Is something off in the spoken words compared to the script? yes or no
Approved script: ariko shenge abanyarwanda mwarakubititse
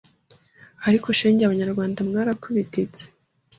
no